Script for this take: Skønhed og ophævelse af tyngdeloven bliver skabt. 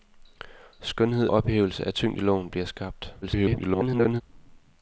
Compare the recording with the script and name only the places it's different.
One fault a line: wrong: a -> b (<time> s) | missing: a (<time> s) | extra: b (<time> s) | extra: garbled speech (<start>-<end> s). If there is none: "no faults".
missing: og (1.3 s)
extra: garbled speech (3.2-4.2 s)